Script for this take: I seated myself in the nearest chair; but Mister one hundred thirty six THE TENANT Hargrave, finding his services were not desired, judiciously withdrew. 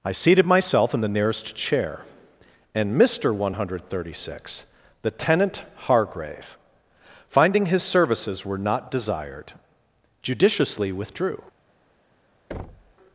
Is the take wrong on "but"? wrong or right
wrong